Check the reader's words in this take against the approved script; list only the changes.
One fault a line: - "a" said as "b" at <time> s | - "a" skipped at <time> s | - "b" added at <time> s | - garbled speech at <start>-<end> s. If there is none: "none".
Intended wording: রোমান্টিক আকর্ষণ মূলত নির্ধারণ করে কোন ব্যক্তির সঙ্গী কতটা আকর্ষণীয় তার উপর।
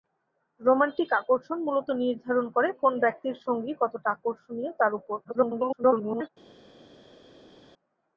- garbled speech at 5.2-6.3 s